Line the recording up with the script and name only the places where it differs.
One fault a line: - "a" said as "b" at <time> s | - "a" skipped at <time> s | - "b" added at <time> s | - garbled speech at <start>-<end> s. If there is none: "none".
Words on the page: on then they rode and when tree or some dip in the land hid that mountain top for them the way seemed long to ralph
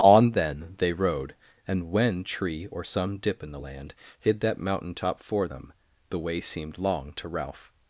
none